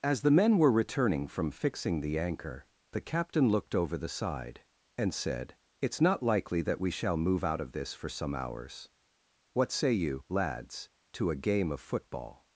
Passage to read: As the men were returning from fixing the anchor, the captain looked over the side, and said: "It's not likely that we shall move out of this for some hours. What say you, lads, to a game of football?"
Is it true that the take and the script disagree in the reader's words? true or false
false